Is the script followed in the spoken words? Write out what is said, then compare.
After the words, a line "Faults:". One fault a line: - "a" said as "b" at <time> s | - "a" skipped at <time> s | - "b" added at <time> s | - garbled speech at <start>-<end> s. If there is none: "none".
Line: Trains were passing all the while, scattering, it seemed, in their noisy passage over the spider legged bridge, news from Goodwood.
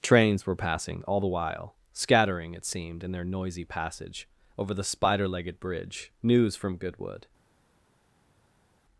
Trains were passing all the while, scattering, it seemed, in their noisy passage over the spider legged bridge, news from Goodwood.
Faults:
none